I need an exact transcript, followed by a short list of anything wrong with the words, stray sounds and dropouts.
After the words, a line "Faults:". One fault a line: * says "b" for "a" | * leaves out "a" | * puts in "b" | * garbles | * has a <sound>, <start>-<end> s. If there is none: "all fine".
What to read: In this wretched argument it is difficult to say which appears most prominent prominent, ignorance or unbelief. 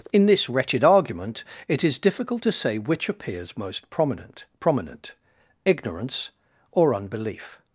In this wretched argument it is difficult to say which appears most prominent prominent, ignorance or unbelief.
Faults:
all fine